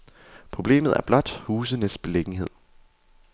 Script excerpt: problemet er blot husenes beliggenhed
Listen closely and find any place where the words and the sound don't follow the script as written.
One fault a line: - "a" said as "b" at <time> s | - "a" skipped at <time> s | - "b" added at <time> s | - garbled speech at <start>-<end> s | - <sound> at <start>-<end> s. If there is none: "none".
none